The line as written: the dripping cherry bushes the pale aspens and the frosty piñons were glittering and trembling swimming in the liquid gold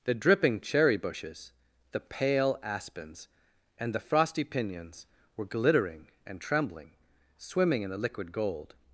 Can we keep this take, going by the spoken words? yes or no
yes